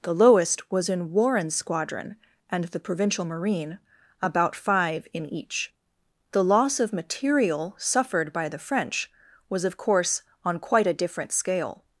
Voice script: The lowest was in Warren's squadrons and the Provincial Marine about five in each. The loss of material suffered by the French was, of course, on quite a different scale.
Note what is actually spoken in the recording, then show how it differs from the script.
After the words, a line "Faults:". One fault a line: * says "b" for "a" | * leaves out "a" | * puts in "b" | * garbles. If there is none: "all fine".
The lowest was in Warren's squadron and the Provincial Marine about five in each. The loss of material suffered by the French was, of course, on quite a different scale.
Faults:
* says "squadron" for "squadrons"